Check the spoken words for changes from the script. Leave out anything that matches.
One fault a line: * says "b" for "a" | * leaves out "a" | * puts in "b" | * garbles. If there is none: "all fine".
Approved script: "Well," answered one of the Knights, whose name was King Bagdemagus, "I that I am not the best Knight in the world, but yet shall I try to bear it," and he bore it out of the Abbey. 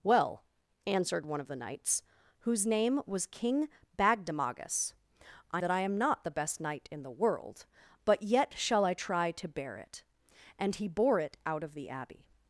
all fine